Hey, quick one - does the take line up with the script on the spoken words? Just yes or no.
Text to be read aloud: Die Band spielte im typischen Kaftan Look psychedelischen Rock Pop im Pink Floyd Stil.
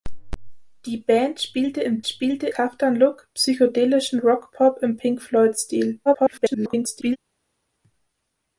no